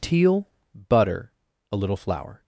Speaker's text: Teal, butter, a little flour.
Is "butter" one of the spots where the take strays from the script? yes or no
no